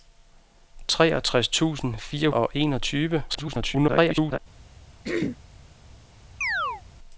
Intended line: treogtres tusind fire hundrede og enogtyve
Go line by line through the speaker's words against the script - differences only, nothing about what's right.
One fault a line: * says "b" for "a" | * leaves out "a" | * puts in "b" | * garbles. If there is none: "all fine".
* leaves out "hundrede"
* garbles